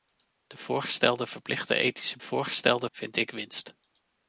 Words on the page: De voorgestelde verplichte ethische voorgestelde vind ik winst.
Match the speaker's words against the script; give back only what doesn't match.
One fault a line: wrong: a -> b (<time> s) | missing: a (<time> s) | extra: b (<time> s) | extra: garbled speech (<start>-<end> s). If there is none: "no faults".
no faults